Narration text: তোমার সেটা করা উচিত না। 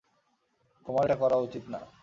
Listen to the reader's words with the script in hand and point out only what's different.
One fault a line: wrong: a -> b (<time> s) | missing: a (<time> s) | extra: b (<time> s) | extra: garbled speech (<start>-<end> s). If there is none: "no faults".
wrong: সেটা -> এটা (1.0 s)